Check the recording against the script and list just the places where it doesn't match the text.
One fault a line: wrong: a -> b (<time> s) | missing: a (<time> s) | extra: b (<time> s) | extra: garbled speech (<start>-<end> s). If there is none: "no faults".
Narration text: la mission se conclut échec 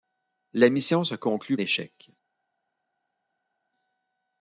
no faults